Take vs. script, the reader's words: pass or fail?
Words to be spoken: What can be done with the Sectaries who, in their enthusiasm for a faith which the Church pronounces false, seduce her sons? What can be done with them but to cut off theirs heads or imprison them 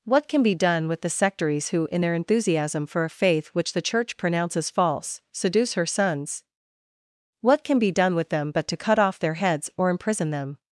fail